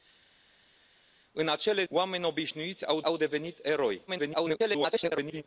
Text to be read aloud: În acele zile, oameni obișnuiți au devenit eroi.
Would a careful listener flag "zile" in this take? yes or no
yes